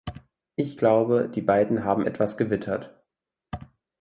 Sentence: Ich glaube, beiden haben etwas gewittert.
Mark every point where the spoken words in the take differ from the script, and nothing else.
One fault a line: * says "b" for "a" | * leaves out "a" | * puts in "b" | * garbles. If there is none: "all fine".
* puts in "die"